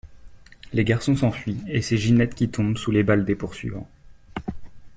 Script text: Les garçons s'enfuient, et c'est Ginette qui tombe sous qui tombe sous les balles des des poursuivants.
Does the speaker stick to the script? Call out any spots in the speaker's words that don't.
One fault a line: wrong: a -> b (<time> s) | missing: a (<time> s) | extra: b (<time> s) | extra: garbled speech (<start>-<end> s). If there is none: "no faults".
missing: qui tombe sous (2.9 s)
missing: des (3.3 s)